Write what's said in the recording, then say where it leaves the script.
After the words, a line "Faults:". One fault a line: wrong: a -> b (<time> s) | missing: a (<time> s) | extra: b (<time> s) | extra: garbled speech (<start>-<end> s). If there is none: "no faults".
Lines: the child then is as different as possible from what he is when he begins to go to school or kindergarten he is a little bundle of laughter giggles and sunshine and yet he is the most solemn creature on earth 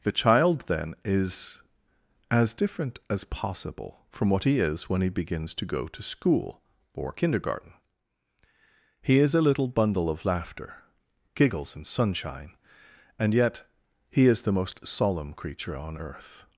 the child then is as different as possible from what he is when he begins to go to school or kindergarten he is a little bundle of laughter giggles and sunshine and yet he is the most solemn creature on earth
Faults:
no faults